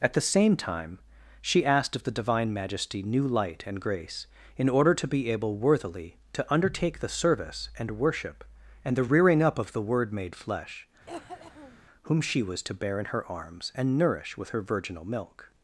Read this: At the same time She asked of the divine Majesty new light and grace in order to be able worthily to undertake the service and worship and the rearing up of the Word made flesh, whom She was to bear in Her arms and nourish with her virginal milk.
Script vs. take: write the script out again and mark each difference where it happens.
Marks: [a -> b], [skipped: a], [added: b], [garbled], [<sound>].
At the same time She asked of the divine Majesty new light and grace in order to be able worthily to undertake the service and worship and the rearing up of the Word made flesh, [cough] whom She was to bear in Her arms and nourish with her virginal milk.